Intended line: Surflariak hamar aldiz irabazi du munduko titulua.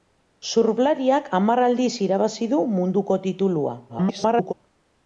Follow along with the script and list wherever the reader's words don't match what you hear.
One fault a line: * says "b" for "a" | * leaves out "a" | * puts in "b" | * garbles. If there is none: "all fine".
* garbles